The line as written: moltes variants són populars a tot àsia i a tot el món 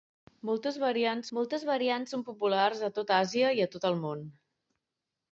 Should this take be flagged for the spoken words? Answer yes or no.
yes